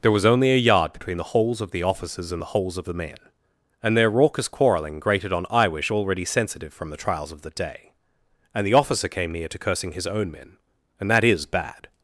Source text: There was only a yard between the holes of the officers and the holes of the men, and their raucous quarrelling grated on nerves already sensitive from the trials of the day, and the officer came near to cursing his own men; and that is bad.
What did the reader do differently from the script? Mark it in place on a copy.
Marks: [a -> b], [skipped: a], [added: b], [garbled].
There was only a yard between the holes of the officers and the holes of the men, and their raucous quarrelling grated on [nerves -> iwish] already sensitive from the trials of the day, and the officer came near to cursing his own men; and that is bad.